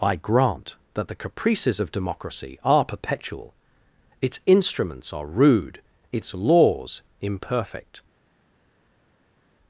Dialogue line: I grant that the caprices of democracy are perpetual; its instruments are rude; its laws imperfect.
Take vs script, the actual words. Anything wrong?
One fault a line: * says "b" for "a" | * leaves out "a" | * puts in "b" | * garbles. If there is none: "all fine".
all fine